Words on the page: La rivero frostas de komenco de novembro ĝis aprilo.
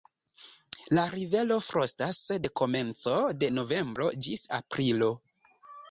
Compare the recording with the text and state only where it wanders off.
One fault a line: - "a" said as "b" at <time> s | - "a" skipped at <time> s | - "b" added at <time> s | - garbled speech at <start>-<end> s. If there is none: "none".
none